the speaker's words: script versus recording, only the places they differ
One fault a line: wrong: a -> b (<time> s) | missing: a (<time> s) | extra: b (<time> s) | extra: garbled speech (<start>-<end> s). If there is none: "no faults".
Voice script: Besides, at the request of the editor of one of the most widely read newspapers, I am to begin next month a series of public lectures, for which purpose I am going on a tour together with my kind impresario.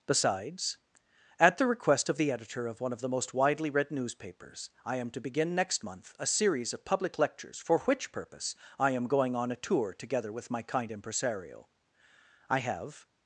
extra: I have (12.5 s)